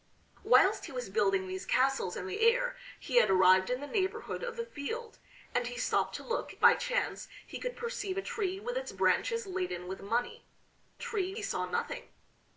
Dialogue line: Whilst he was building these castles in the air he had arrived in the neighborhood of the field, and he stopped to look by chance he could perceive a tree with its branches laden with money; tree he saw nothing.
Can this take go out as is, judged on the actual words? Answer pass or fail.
pass